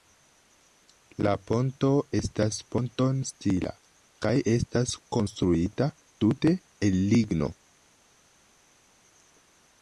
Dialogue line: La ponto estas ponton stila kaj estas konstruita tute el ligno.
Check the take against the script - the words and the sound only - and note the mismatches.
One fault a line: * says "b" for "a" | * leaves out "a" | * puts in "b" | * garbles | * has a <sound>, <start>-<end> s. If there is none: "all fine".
all fine